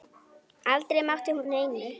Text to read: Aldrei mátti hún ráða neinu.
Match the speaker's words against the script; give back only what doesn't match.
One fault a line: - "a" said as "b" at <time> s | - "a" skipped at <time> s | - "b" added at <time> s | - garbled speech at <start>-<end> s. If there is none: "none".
- "ráða" skipped at 1.5 s